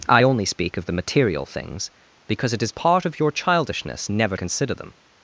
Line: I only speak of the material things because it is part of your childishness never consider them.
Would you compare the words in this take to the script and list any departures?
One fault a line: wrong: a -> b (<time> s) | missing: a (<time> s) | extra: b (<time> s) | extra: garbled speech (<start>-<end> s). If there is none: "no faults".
no faults